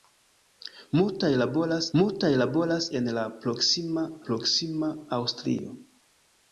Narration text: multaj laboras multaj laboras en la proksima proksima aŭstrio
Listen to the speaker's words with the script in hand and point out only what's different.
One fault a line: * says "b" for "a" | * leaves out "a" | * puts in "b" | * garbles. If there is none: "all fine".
all fine